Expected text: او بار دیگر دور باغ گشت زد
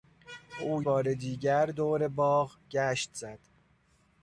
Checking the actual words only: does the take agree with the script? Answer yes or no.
yes